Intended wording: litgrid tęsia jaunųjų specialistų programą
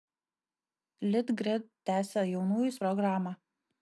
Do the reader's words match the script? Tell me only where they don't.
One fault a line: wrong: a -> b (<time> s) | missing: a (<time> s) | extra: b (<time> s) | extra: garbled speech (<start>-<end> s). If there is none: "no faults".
missing: specialistų (2.8 s)